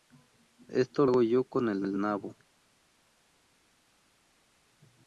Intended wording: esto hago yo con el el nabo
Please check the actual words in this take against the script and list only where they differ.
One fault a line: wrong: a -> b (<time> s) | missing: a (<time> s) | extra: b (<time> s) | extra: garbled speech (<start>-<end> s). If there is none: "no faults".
no faults